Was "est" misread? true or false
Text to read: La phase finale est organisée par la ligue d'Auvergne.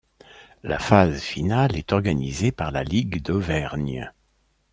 false